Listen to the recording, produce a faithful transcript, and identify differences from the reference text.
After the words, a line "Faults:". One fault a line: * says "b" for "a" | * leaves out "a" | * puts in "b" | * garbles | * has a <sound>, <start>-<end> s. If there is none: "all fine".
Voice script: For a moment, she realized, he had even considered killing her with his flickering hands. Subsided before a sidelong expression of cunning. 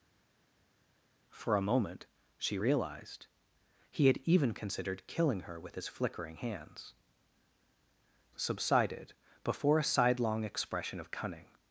For a moment, she realized, he had even considered killing her with his flickering hands. Subsided before a sidelong expression of cunning.
Faults:
all fine